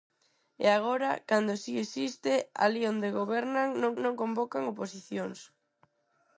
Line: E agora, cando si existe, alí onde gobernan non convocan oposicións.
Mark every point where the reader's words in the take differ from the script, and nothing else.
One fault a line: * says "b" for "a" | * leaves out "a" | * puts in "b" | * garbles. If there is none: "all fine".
* puts in "non"